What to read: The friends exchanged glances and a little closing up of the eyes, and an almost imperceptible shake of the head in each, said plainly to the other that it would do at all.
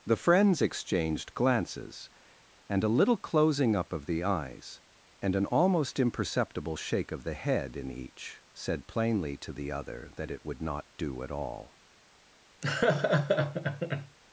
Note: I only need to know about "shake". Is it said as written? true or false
true